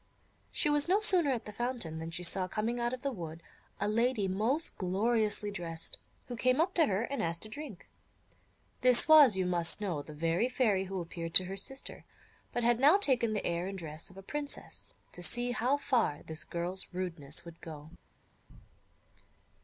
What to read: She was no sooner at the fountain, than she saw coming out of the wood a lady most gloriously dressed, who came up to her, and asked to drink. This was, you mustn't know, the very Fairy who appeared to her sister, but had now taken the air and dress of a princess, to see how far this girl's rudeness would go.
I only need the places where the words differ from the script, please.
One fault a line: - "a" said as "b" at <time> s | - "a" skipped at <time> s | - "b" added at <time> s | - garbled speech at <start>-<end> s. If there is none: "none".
- "mustn't" said as "must" at 9.4 s